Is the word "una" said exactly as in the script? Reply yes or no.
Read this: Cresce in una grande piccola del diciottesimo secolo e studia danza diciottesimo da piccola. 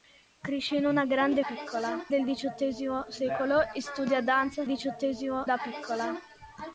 yes